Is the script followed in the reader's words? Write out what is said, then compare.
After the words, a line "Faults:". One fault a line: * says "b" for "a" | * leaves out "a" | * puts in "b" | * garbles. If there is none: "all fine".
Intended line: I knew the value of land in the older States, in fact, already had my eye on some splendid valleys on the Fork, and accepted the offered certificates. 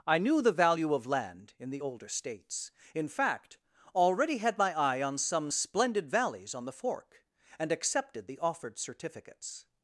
I knew the value of land in the older States, in fact, already had my eye on some splendid valleys on the Fork, and accepted the offered certificates.
Faults:
all fine